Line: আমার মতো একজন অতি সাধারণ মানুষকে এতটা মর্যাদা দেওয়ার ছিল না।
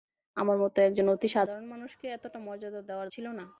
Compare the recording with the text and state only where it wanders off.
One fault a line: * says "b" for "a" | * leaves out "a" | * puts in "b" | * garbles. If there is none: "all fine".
all fine